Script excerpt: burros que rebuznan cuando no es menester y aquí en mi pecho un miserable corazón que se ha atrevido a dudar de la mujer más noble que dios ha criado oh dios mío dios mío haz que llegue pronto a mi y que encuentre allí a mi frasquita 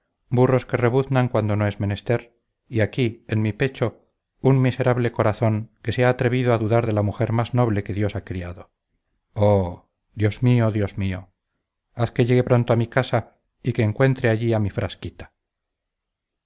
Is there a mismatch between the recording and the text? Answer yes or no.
yes